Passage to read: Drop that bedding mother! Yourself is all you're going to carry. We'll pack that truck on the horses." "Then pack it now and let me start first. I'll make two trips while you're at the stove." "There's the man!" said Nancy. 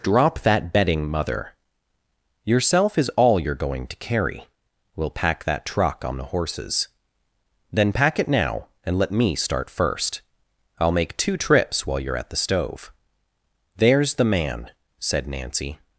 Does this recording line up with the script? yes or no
yes